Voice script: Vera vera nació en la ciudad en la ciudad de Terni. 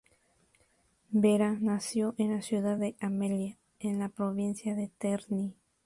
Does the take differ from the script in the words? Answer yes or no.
yes